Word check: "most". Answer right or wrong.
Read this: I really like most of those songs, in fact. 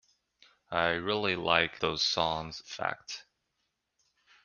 wrong